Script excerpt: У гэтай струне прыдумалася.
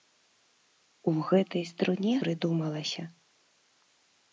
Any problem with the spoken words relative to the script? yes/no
no